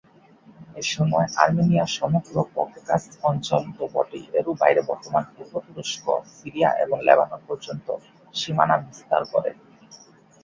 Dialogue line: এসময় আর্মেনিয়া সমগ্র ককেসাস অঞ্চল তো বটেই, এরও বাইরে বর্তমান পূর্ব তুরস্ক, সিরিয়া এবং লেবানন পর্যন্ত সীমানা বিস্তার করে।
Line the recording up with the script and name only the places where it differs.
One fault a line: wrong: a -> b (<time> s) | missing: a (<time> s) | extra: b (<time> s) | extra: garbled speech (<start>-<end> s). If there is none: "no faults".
no faults